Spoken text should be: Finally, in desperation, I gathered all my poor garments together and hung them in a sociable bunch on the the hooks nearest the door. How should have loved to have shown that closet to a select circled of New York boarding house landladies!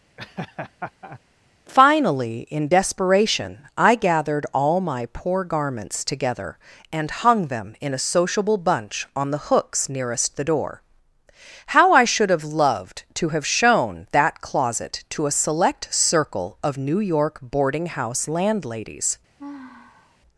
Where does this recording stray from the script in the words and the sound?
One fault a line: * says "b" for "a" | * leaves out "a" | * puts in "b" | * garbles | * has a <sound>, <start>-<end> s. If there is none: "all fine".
* has a laugh, 0.2-1.2 s
* leaves out "the"
* puts in "I"
* says "circle" for "circled"
* has a sigh, 19.4-20.2 s